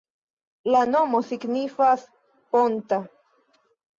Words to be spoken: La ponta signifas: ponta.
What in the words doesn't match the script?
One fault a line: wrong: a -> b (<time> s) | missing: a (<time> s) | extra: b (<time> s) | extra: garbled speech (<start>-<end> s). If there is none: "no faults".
wrong: ponta -> nomo (0.9 s)